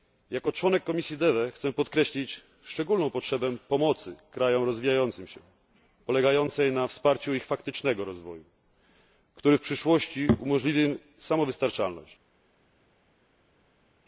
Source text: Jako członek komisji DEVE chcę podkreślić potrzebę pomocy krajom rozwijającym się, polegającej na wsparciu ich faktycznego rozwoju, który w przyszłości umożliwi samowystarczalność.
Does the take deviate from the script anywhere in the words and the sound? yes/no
yes